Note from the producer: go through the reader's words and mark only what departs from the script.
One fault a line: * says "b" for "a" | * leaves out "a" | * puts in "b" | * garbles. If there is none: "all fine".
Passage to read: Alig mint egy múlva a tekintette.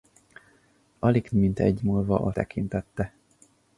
all fine